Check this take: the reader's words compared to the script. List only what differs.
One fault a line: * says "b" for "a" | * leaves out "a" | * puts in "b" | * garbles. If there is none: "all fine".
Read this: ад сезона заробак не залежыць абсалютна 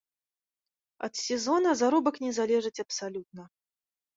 all fine